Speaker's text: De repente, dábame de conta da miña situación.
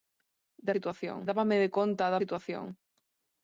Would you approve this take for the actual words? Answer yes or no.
no